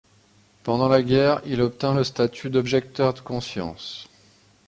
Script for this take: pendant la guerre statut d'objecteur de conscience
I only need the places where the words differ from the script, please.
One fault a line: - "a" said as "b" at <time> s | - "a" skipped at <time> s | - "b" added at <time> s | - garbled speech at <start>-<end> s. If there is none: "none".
- "il obtint le" added at 1.4 s